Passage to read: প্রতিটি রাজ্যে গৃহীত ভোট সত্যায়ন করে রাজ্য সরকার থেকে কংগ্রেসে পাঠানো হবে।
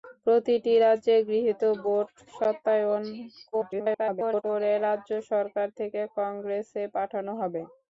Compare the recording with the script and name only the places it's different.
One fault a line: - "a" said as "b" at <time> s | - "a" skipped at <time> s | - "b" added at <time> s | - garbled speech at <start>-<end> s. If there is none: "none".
- garbled speech at 3.5-4.4 s